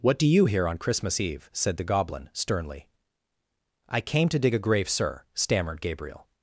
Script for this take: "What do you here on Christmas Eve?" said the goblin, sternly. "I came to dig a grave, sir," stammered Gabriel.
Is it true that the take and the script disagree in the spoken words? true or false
false